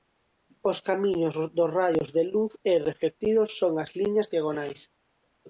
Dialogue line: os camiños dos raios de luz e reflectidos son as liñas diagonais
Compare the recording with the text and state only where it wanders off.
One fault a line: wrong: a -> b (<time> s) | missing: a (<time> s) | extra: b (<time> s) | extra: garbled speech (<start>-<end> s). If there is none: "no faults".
no faults